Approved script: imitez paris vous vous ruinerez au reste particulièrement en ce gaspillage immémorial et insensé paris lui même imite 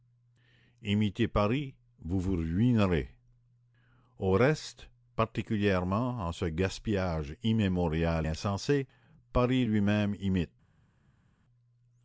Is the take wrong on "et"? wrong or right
wrong